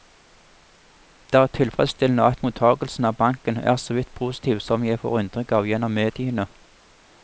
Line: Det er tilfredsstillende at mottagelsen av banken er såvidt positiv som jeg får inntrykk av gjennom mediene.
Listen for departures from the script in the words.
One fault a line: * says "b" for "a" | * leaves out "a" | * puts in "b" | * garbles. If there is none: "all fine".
all fine